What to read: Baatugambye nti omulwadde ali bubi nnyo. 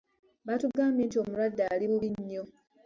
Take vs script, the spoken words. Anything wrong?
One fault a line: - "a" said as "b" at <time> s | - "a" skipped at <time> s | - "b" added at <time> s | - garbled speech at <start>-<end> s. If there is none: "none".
none